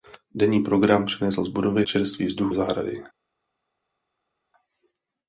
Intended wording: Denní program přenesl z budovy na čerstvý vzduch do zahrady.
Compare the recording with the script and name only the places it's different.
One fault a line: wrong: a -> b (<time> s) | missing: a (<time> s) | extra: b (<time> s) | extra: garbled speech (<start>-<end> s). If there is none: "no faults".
missing: na (1.9 s)
missing: do (2.5 s)